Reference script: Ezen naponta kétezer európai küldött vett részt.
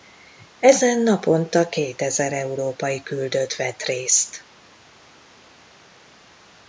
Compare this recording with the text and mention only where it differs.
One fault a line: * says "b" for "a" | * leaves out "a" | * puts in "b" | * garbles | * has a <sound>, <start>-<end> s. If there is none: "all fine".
all fine